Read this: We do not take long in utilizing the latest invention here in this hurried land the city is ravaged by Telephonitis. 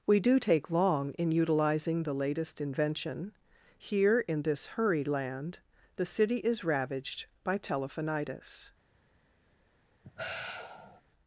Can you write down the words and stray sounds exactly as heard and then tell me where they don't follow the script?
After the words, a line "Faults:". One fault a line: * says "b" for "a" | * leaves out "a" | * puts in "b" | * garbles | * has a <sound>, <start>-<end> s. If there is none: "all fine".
We do take long in utilizing the latest invention here in this hurried land the city is ravaged by Telephonitis.
Faults:
* leaves out "not"
* has a sigh, 10.0-11.0 s